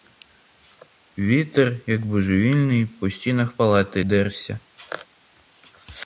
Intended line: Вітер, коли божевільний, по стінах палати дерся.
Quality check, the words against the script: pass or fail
fail